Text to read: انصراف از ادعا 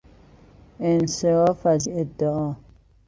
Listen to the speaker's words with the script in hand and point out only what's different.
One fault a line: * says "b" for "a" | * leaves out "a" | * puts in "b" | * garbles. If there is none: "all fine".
all fine